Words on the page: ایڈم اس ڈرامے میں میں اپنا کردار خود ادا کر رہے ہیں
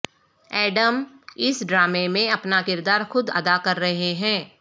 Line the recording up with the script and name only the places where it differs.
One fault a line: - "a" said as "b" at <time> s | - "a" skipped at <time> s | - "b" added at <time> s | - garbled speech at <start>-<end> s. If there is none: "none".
- "میں" skipped at 2.3 s